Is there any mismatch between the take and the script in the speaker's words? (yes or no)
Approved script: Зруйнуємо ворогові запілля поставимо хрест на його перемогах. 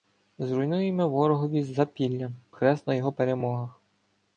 yes